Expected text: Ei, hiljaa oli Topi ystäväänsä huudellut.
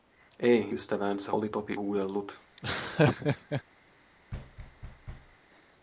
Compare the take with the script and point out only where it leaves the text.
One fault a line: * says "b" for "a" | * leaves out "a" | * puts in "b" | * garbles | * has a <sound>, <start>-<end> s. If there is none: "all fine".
* says "ystäväänsä" for "hiljaa"
* leaves out "ystäväänsä"
* has a laugh, 2.6-3.6 s
* has a thud, 4.3-5.4 s